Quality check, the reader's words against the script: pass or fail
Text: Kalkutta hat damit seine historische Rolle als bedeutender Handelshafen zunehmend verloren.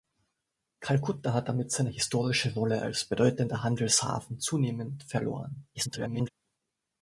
fail